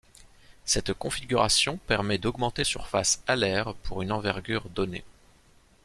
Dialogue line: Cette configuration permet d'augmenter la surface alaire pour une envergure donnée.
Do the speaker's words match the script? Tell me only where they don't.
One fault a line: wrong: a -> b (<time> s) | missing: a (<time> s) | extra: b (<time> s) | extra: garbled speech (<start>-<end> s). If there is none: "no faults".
missing: la (2.6 s)